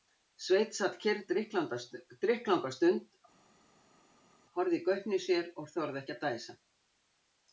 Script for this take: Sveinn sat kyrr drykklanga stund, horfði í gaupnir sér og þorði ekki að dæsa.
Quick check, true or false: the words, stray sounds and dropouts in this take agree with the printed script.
true